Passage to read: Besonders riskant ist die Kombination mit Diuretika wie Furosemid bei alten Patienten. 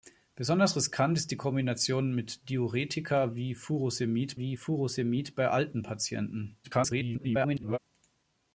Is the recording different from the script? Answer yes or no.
yes